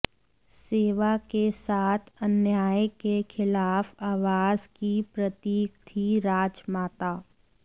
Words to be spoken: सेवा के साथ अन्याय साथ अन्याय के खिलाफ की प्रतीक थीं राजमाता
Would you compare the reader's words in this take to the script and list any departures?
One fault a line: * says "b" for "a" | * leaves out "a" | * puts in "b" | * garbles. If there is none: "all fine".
* leaves out "साथ अन्याय"
* puts in "आवाज"